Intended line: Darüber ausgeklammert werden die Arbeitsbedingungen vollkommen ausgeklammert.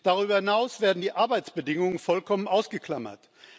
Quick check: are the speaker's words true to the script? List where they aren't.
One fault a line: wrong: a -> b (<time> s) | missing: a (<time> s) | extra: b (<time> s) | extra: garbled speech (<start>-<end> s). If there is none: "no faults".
wrong: ausgeklammert -> hinaus (0.4 s)